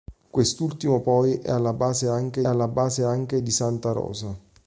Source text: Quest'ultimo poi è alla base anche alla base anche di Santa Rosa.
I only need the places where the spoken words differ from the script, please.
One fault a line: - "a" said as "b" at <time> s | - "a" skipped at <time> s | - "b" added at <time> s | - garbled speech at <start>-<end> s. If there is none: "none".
none